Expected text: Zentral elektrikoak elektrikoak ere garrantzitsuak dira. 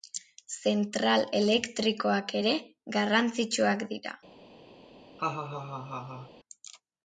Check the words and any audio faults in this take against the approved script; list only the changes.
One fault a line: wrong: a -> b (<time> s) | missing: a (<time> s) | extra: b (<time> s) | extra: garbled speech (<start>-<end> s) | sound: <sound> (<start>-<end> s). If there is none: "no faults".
missing: elektrikoak (2.3 s)
sound: laugh (5.2-6.3 s)